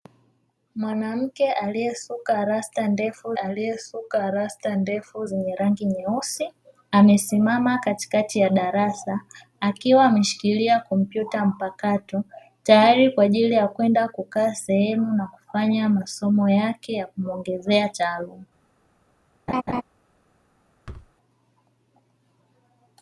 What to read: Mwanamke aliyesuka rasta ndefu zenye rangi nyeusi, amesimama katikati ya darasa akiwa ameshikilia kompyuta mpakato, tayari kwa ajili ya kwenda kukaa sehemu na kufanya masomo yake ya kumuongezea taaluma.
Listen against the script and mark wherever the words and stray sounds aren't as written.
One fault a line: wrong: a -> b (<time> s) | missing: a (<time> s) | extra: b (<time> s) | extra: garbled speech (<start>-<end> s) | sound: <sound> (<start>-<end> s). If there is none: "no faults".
extra: aliyesuka rasta ndefu (3.3 s)
sound: laugh (19.5-19.8 s)
sound: thud (20.9-21.1 s)